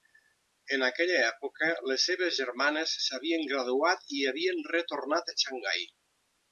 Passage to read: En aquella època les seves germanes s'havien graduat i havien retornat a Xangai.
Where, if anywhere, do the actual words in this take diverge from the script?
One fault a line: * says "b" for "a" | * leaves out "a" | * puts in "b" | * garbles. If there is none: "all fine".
all fine